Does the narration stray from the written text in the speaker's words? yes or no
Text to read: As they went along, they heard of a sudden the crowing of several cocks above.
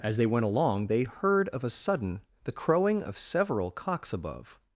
no